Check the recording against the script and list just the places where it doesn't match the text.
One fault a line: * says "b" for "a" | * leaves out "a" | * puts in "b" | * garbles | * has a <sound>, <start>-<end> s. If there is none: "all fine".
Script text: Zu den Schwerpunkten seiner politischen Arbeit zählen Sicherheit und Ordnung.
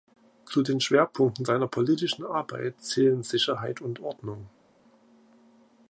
all fine